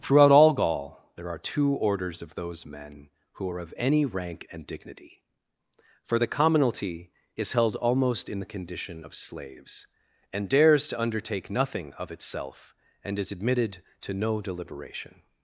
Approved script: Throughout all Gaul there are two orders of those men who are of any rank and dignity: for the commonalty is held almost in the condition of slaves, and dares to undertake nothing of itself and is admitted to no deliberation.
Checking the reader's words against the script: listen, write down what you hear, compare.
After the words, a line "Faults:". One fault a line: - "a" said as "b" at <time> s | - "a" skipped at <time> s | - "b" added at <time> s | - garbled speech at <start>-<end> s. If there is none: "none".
Throughout all Gaul there are two orders of those men who are of any rank and dignity: for the commonalty is held almost in the condition of slaves, and dares to undertake nothing of itself and is admitted to no deliberation.
Faults:
none